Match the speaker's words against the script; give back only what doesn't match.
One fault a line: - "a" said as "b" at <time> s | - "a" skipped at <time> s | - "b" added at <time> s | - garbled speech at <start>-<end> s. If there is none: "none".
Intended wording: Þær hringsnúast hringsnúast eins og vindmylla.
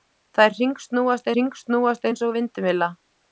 none